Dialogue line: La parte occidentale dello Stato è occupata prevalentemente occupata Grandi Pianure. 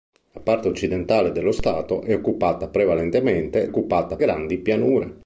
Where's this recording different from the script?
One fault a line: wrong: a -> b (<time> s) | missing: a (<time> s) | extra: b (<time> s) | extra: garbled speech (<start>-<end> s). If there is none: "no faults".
no faults